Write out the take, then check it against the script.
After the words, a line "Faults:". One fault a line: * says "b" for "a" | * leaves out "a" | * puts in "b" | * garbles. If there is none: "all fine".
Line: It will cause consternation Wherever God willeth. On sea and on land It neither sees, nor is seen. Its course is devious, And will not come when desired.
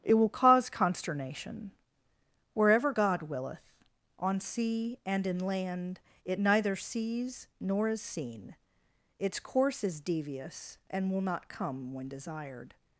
It will cause consternation Wherever God willeth. On sea and in land It neither sees, nor is seen. Its course is devious, And will not come when desired.
Faults:
* says "in" for "on"